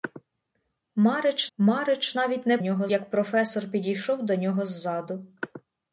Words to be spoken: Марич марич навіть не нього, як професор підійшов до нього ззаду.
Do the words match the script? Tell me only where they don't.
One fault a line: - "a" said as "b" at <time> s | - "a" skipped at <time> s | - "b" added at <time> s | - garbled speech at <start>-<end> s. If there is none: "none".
none